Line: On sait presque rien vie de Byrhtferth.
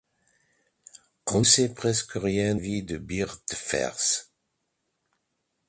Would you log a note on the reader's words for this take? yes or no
no